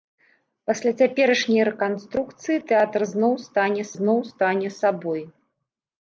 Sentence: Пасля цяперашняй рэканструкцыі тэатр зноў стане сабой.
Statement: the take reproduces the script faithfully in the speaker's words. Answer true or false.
false